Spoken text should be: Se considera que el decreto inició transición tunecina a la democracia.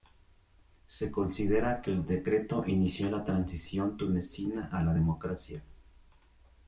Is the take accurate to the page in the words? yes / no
no